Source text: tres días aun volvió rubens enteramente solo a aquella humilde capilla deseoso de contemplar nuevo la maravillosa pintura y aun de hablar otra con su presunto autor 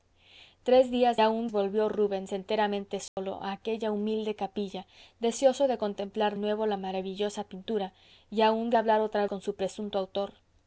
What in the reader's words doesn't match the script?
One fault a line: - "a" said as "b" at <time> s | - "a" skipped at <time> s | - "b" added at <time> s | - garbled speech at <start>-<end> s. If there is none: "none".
none